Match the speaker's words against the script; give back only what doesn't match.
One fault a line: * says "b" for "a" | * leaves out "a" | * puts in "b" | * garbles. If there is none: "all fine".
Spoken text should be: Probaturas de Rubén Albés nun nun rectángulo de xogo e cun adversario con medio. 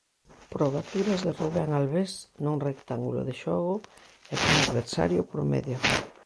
* leaves out "nun"
* says "por" for "con"